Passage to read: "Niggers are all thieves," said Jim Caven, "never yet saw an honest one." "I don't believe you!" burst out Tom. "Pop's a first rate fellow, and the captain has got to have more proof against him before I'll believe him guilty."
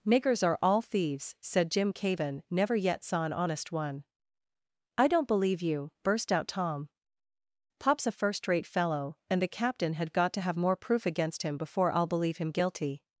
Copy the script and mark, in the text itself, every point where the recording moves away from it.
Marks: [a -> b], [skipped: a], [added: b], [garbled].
"Niggers are all thieves," said Jim Caven, "never yet saw an honest one." "I don't believe you!" burst out Tom. "Pop's a first rate fellow, and the captain [has -> had] got to have more proof against him before I'll believe him guilty."